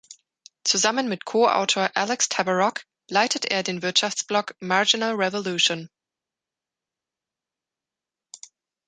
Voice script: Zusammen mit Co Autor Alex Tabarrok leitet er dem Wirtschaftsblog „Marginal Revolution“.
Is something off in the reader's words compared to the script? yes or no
yes